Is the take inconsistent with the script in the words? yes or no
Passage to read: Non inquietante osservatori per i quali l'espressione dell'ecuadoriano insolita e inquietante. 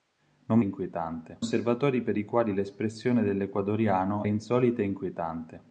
no